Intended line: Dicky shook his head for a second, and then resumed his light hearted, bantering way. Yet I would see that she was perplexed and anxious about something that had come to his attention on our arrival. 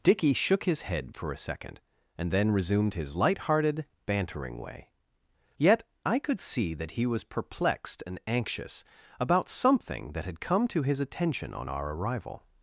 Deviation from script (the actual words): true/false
true